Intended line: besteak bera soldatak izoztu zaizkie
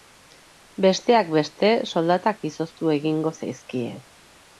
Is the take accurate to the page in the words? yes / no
no